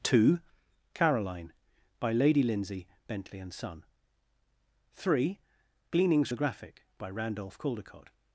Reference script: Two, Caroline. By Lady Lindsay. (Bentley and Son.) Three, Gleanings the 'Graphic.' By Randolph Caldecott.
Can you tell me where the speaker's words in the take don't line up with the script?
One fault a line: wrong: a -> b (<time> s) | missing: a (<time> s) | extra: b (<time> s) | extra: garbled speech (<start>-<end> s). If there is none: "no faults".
no faults